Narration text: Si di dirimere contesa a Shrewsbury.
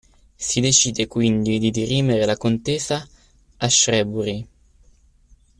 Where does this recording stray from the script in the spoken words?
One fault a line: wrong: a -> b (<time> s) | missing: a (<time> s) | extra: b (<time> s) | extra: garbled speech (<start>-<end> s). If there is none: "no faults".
extra: decide quindi (0.6 s)
extra: la (2.2 s)